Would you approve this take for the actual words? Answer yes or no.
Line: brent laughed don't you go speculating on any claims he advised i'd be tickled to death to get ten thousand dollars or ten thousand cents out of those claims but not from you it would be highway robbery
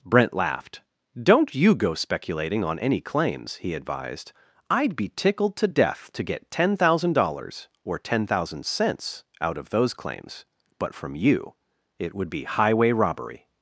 no